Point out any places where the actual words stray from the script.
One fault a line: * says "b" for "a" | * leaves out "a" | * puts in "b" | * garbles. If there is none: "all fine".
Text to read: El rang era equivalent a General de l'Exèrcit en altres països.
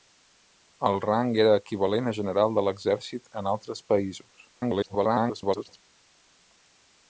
* garbles